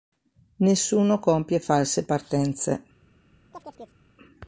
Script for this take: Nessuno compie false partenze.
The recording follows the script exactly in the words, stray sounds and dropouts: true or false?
false